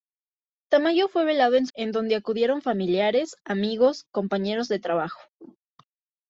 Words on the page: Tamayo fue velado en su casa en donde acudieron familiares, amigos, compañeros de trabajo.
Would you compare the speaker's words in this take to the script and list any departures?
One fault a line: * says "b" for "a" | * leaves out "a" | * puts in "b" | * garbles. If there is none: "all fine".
* leaves out "su casa"